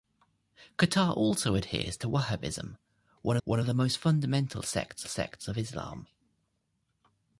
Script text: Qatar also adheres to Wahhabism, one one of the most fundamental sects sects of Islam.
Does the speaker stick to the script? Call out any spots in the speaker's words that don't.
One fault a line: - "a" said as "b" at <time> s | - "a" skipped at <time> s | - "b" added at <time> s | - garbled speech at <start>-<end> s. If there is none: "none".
none